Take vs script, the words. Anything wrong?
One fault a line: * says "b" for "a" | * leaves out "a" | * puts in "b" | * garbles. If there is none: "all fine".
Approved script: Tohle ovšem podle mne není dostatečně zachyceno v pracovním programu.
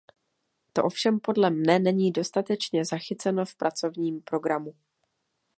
* says "To" for "Tohle"